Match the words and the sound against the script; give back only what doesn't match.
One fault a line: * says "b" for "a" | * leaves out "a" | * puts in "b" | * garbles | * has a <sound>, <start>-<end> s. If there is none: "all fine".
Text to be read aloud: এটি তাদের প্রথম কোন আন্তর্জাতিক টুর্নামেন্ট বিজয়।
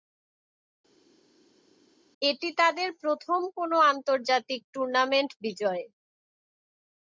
all fine